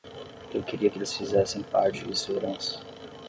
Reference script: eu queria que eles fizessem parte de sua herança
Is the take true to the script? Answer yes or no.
yes